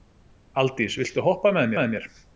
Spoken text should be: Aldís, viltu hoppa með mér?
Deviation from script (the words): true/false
true